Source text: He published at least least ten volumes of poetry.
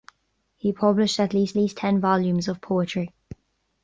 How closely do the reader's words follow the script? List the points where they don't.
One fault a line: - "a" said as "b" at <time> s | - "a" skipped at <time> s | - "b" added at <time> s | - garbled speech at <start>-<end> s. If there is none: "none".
none